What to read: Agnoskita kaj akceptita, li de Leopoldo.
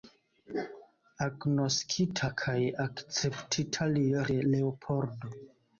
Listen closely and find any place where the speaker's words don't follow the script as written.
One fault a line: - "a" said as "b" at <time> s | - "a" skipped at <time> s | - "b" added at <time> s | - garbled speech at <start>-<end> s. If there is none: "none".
none